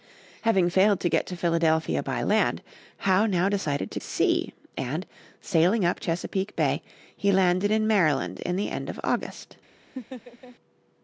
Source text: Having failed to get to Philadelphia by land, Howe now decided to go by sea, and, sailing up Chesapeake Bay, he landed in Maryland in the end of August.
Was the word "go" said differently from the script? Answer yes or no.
yes